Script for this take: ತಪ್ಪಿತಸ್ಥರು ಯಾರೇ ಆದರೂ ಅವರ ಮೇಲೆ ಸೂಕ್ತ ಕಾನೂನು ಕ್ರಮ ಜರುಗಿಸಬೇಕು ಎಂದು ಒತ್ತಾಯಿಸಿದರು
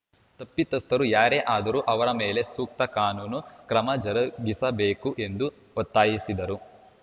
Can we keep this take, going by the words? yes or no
yes